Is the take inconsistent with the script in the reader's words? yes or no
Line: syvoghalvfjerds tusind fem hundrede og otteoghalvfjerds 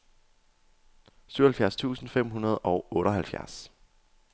no